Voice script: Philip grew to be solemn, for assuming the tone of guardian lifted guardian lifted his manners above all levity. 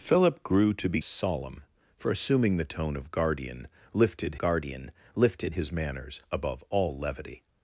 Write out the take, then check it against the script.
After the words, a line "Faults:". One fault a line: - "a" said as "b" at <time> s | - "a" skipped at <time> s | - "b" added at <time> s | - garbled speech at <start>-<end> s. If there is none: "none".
Philip grew to be solemn, for assuming the tone of guardian lifted guardian lifted his manners above all levity.
Faults:
none